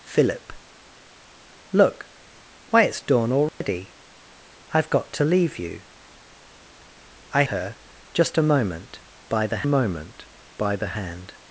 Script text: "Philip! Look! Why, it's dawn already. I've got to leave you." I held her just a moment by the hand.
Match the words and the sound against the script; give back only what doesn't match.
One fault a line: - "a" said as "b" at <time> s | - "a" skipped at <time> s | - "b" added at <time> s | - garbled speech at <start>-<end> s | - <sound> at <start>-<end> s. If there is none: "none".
- dropout at 3.5-3.6 s
- "held" skipped at 7.4 s
- "moment by the" added at 9.6 s